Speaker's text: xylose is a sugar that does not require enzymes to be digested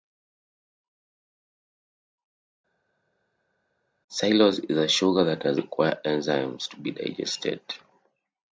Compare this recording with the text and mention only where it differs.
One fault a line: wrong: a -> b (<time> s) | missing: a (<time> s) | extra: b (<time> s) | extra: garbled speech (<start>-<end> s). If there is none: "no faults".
missing: not (5.6 s)